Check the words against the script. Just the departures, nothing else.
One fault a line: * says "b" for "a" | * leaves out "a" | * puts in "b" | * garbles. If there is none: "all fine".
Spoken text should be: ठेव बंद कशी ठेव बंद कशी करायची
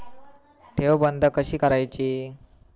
* leaves out "ठेव बंद कशी"